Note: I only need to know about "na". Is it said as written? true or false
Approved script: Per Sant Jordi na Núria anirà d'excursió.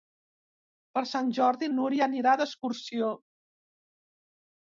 false